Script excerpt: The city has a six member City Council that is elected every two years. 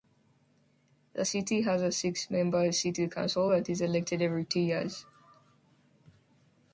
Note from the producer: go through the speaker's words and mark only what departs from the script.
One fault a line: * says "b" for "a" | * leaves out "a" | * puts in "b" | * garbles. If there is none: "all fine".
all fine